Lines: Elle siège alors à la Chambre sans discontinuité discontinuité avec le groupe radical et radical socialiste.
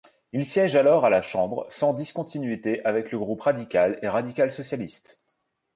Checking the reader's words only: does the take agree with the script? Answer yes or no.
no